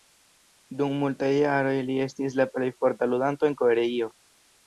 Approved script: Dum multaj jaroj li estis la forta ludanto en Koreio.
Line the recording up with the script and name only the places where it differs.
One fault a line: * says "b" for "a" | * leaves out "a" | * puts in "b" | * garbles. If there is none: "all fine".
* puts in "plej"